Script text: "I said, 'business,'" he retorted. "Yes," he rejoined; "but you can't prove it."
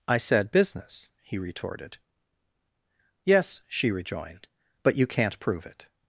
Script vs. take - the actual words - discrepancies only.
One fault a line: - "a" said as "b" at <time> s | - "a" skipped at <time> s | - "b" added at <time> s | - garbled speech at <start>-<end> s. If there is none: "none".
- "he" said as "she" at 3.7 s